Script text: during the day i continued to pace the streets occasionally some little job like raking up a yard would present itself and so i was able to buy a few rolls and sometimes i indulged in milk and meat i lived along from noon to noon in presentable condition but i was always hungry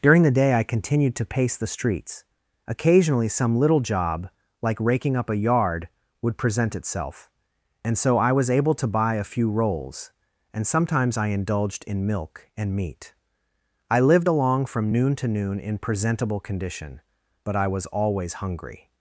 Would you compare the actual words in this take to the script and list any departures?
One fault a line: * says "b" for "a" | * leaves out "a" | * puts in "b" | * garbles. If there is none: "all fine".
all fine